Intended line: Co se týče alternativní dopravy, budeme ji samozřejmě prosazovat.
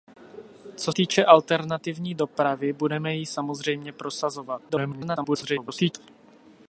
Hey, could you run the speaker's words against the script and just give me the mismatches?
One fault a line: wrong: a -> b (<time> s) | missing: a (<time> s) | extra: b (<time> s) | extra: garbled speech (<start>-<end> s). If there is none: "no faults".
missing: se (0.9 s)
extra: garbled speech (4.7-5.9 s)